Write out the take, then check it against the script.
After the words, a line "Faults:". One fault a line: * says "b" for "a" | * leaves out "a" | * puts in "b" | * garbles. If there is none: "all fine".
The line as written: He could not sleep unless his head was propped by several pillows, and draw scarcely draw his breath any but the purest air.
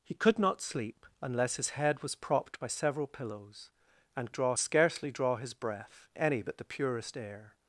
He could not sleep unless his head was propped by several pillows, and draw scarcely draw his breath any but the purest air.
Faults:
all fine